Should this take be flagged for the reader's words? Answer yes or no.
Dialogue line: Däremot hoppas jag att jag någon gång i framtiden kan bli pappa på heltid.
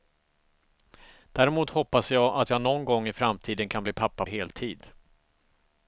yes